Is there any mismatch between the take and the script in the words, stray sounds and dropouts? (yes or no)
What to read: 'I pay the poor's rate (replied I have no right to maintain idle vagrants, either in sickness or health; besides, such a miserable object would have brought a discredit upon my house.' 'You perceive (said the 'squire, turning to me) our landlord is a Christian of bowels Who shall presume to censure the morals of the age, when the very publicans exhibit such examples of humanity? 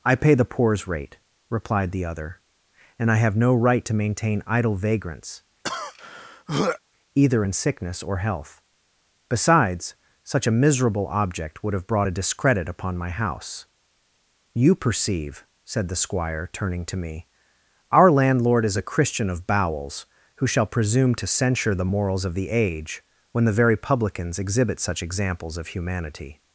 yes